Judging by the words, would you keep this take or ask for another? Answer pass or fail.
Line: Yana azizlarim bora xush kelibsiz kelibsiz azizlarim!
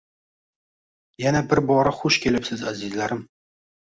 fail